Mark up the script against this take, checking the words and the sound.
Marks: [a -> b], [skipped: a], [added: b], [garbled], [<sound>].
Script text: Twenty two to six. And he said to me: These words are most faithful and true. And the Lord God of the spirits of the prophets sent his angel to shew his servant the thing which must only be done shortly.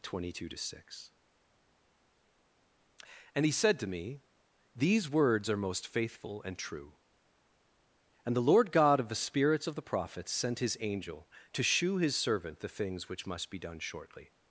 Twenty two to six. And he said to me: These words are most faithful and true. And the Lord God of the spirits of the prophets sent his angel to shew his servant the [thing -> things] which must [skipped: only] be done shortly.